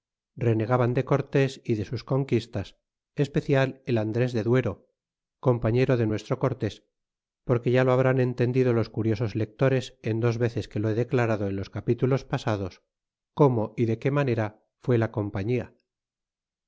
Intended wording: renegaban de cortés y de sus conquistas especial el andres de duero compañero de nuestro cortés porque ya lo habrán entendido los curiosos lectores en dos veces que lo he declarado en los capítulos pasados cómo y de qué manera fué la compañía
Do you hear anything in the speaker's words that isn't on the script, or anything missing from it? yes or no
no